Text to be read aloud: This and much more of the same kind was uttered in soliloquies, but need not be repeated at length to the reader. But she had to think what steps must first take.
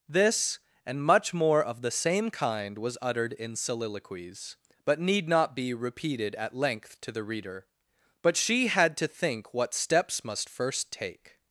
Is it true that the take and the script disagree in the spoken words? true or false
false